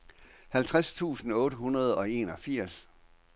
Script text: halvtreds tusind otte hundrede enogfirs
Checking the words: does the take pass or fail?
fail